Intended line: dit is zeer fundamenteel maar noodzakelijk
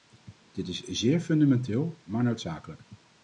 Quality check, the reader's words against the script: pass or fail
pass